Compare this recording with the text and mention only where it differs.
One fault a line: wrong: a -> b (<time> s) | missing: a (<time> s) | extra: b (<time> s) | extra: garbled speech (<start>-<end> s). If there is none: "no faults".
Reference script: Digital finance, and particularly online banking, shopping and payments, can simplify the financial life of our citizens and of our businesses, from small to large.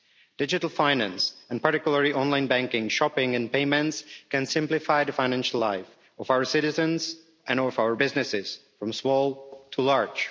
no faults